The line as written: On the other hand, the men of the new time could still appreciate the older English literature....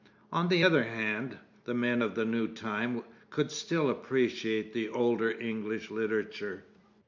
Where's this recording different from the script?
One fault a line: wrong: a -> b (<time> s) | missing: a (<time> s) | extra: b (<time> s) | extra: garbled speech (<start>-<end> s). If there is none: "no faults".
no faults